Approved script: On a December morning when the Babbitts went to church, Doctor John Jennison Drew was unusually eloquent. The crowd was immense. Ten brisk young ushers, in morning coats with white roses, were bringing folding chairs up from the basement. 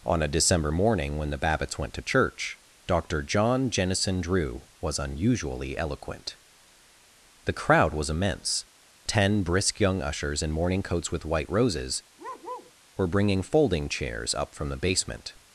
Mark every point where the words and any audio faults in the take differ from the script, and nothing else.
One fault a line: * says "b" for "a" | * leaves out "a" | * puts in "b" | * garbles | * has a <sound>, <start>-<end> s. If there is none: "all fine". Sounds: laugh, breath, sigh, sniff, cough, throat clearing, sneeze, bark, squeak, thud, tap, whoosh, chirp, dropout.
* has a bark, 12.2-12.7 s